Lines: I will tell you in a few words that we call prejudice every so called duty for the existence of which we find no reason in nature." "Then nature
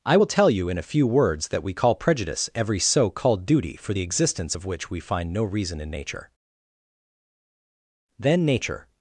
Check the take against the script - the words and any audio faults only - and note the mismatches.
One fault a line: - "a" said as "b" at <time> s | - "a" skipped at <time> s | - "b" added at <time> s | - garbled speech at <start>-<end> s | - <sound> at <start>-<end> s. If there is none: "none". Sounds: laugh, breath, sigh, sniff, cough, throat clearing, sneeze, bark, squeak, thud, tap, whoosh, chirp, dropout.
none